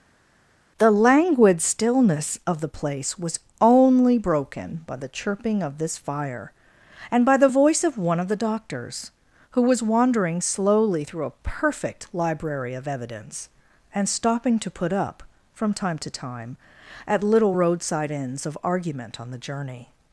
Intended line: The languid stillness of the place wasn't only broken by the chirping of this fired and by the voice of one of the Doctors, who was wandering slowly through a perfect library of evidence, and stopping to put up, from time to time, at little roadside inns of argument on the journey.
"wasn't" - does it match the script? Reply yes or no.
no